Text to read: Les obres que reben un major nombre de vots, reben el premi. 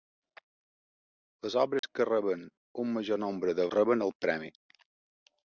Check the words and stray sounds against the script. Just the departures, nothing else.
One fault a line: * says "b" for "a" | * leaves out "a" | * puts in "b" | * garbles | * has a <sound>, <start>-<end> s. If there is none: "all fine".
* has a dropout, 1.8-1.8 s
* leaves out "vots"